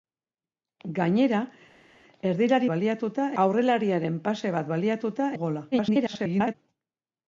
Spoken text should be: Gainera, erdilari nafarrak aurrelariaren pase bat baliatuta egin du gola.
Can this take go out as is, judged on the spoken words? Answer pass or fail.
fail